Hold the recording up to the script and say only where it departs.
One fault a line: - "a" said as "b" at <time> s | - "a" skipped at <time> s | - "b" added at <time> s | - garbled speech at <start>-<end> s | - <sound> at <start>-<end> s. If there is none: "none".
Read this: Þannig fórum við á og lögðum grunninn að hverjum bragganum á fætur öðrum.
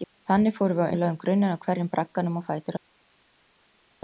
none